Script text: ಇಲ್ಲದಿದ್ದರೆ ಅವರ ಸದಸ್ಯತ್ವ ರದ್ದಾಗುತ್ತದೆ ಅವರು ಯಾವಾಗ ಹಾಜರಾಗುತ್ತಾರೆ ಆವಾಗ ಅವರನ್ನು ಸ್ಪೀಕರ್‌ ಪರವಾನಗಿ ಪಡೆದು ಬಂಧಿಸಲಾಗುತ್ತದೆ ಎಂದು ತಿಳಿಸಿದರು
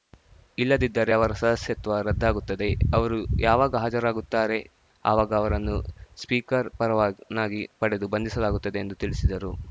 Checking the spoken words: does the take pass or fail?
pass